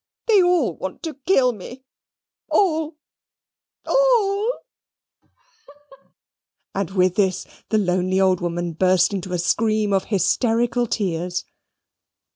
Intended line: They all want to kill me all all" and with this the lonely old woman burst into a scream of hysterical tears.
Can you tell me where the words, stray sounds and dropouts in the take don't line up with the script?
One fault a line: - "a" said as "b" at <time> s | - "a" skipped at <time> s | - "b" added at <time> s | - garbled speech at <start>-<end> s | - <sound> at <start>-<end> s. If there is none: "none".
- laugh at 5.2-6.1 s